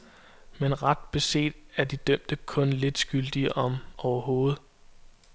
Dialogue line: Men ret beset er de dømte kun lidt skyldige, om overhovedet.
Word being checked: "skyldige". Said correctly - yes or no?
yes